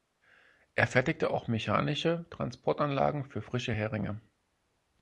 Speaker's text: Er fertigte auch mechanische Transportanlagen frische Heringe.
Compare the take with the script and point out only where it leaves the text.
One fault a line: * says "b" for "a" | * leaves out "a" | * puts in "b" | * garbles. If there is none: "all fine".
* puts in "für"